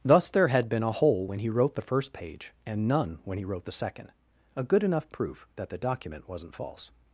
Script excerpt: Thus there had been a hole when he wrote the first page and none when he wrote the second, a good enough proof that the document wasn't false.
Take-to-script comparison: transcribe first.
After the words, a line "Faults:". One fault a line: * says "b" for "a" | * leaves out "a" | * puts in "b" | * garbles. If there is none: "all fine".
Thus there had been a hole when he wrote the first page and none when he wrote the second, a good enough proof that the document wasn't false.
Faults:
all fine